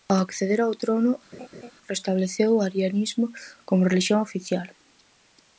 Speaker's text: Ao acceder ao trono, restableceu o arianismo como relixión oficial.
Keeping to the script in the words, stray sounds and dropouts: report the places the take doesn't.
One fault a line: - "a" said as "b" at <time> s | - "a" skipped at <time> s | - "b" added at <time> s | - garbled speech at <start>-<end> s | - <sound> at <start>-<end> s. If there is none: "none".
- laugh at 1.3-1.7 s